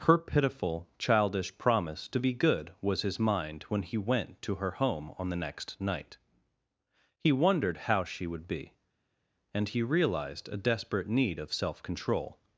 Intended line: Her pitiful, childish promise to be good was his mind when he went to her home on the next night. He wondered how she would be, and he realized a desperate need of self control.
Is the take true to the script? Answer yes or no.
yes